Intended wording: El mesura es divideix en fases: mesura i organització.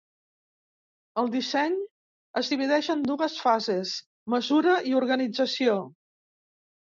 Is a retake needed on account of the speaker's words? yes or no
yes